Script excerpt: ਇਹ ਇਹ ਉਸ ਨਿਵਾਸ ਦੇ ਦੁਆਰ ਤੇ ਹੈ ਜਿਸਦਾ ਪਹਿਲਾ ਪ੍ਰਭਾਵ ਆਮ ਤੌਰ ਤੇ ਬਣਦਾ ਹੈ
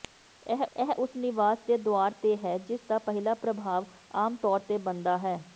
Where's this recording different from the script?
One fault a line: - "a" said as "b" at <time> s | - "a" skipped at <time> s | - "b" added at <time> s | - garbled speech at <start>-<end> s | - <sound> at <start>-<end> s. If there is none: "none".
none